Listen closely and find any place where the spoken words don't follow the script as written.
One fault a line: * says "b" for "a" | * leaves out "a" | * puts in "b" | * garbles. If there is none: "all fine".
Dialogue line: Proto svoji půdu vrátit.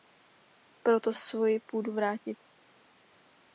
all fine